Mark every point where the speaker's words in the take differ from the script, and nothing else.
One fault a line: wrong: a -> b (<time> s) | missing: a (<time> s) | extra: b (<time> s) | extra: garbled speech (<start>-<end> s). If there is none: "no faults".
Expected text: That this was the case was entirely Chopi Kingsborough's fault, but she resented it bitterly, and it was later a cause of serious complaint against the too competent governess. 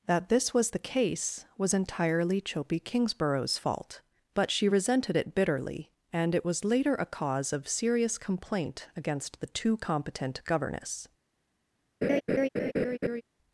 no faults